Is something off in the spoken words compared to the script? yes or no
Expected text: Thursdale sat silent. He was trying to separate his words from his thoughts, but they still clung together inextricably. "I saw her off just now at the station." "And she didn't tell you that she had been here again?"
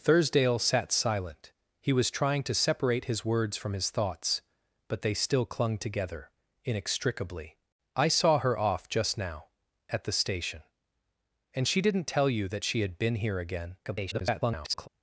yes